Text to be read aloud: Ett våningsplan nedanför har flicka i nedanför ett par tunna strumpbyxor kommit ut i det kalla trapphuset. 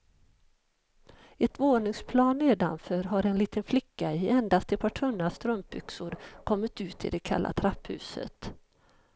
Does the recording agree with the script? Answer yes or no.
no